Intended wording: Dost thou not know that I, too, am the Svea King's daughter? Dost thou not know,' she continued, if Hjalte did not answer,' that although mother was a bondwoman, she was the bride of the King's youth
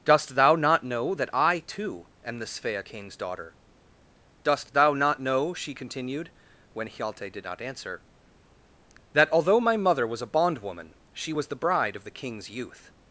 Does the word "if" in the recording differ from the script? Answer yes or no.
yes